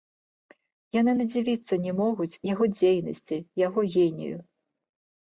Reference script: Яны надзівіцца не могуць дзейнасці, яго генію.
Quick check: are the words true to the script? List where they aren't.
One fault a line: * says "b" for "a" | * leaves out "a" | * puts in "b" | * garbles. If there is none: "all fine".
* puts in "яго"